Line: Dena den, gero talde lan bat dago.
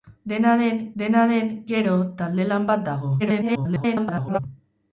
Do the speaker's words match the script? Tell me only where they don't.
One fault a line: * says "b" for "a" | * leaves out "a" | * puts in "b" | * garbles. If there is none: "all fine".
* puts in "dena den"
* garbles